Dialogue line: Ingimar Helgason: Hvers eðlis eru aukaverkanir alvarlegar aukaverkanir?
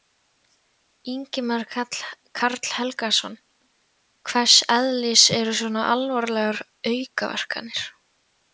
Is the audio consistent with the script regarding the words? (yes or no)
no